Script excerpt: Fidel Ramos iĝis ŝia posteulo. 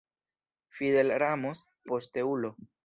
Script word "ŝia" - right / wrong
wrong